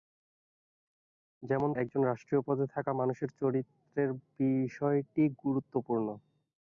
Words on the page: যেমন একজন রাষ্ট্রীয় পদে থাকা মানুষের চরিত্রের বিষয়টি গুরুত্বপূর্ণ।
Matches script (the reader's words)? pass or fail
pass